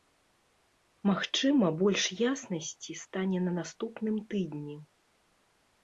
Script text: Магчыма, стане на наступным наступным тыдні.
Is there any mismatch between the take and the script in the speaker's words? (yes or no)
yes